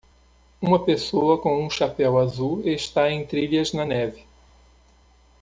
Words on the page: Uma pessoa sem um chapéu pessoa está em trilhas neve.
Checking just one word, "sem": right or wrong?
wrong